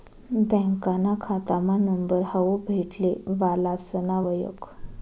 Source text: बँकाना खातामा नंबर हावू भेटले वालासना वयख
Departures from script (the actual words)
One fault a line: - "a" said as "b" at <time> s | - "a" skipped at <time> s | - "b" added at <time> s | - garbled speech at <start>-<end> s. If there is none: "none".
none